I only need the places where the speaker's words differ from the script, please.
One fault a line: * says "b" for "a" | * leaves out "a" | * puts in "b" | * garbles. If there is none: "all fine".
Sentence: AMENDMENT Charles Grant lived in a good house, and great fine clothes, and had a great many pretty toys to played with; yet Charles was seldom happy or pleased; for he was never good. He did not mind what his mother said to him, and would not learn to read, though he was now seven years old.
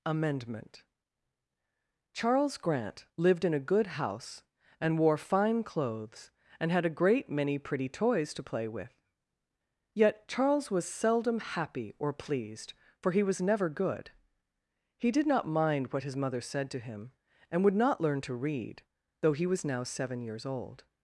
* says "wore" for "great"
* says "play" for "played"